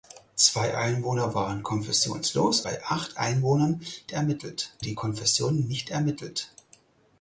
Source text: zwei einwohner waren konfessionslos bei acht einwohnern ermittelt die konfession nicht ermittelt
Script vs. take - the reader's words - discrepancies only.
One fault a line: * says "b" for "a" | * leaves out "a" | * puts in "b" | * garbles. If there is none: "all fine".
all fine